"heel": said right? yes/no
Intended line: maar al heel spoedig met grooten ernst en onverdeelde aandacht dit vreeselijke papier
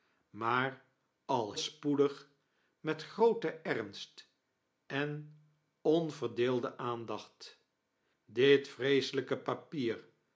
no